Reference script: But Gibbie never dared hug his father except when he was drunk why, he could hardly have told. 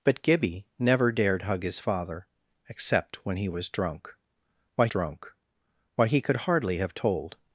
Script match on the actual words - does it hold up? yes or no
no